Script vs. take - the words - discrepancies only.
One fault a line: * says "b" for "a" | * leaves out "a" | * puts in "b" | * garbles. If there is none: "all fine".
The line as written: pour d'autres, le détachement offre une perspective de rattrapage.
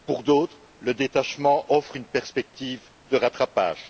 all fine